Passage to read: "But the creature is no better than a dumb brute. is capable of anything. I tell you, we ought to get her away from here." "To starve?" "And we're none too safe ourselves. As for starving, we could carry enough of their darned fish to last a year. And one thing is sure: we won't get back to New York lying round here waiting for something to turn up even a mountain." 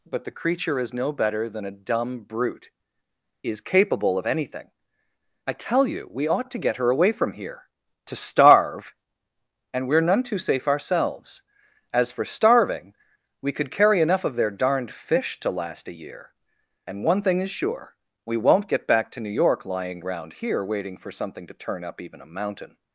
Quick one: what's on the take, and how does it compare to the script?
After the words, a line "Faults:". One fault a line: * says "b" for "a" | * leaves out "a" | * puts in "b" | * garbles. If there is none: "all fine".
"But the creature is no better than a dumb brute. is capable of anything. I tell you, we ought to get her away from here." "To starve?" "And we're none too safe ourselves. As for starving, we could carry enough of their darned fish to last a year. And one thing is sure: we won't get back to New York lying round here waiting for something to turn up even a mountain."
Faults:
all fine